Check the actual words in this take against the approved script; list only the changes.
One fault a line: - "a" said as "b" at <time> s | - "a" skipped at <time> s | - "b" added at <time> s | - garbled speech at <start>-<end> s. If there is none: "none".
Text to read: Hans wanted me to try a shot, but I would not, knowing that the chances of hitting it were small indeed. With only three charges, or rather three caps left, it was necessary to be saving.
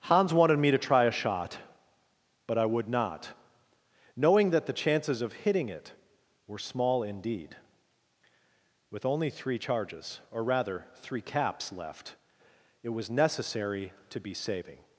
none